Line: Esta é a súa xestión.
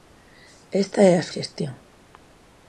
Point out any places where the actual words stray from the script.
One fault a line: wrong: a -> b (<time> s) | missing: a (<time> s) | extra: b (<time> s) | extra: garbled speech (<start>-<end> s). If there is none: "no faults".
missing: súa (1.3 s)